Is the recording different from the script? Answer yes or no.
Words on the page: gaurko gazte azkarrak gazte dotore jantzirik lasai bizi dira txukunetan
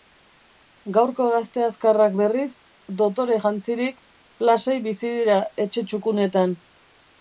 yes